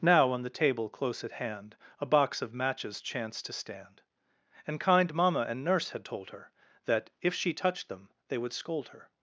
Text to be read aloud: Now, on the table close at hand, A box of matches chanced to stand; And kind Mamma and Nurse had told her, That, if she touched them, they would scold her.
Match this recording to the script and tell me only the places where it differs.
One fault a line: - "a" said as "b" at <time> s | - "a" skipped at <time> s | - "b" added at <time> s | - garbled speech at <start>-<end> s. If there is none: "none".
none